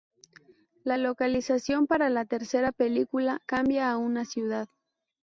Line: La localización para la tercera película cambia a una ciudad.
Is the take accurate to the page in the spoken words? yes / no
yes